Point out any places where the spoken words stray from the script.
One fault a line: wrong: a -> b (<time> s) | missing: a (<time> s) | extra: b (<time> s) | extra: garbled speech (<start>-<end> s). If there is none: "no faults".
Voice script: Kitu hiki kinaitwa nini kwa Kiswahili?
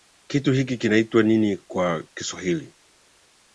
no faults